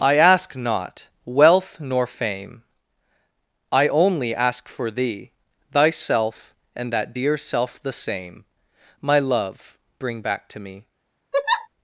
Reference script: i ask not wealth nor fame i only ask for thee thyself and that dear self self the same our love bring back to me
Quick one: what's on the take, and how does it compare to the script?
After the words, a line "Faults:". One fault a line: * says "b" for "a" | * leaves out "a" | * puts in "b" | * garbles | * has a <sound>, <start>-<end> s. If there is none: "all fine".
i ask not wealth nor fame i only ask for thee thyself and that dear self the same my love bring back to me
Faults:
* leaves out "self"
* says "my" for "our"
* has a laugh, 11.3-11.7 s